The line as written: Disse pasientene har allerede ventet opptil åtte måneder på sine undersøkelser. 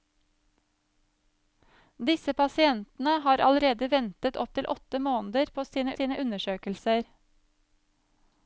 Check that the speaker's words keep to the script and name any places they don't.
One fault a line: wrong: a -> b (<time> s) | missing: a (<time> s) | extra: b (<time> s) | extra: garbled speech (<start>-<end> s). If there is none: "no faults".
extra: sine (6.0 s)